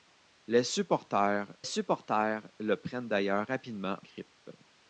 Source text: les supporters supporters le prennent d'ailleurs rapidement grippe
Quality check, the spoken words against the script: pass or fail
pass